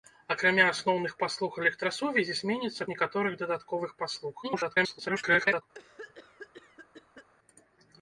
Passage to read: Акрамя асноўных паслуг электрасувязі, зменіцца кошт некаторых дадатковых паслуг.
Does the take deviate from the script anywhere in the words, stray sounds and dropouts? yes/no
yes